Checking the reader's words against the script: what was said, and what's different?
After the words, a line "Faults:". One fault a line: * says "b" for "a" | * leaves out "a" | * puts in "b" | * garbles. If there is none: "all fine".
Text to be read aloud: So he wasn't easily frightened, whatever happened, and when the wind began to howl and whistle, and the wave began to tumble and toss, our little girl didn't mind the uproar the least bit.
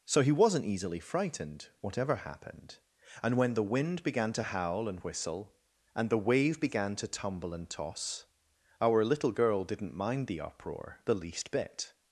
So he wasn't easily frightened, whatever happened, and when the wind began to howl and whistle, and the wave began to tumble and toss, our little girl didn't mind the uproar the least bit.
Faults:
all fine